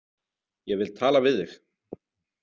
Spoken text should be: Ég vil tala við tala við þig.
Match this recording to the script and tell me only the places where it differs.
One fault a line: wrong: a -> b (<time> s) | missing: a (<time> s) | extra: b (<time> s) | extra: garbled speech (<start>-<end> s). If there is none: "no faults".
missing: tala við (1.4 s)